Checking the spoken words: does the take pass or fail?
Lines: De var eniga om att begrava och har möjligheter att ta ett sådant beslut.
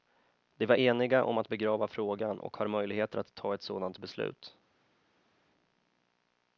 fail